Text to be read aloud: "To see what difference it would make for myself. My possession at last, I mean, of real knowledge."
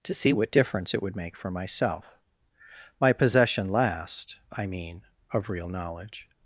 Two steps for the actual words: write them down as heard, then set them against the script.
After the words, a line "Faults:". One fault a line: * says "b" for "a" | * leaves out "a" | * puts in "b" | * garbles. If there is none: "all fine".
"To see what difference it would make for myself. My possession last, I mean, of real knowledge."
Faults:
* leaves out "at"